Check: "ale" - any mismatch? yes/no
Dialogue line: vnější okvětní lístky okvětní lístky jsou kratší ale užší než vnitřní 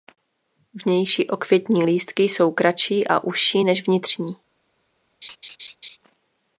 yes